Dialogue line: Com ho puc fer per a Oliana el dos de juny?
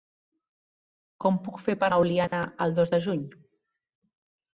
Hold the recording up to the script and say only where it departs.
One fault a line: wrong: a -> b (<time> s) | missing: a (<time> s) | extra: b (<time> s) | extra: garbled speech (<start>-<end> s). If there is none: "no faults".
no faults